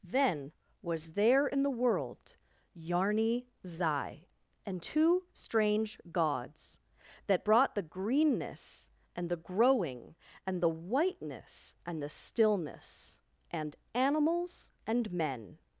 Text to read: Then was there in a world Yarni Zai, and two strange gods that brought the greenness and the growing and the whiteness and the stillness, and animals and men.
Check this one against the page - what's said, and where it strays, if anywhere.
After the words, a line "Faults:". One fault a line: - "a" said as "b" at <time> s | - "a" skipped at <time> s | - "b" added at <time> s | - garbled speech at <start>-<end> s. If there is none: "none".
Then was there in the world Yarni Zai, and two strange gods that brought the greenness and the growing and the whiteness and the stillness, and animals and men.
Faults:
- "a" said as "the" at 1.6 s